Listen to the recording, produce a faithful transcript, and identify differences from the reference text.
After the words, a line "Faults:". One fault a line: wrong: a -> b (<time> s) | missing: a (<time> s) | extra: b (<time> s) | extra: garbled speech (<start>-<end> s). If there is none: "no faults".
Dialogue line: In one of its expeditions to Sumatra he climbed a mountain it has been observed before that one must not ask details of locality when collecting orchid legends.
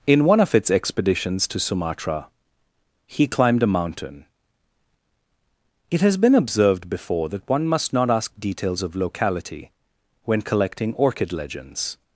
In one of its expeditions to Sumatra he climbed a mountain it has been observed before that one must not ask details of locality when collecting orchid legends.
Faults:
no faults